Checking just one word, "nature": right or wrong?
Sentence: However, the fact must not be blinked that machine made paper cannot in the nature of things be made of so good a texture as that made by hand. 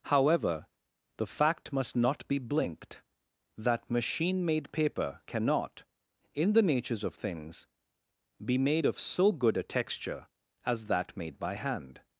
wrong